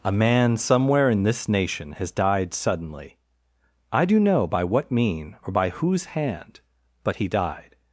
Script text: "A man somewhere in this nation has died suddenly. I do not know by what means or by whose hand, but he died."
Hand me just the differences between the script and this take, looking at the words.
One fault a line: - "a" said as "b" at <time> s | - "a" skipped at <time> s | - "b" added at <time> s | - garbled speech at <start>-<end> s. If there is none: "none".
- "not" skipped at 4.2 s
- "means" said as "mean" at 4.9 s